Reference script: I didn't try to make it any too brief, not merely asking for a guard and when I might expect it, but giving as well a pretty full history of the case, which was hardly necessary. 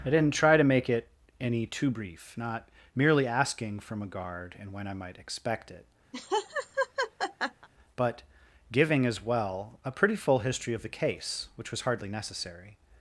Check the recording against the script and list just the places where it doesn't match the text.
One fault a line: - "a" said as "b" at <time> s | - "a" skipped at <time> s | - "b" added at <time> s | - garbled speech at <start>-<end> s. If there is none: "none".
- "for" said as "from" at 3.8 s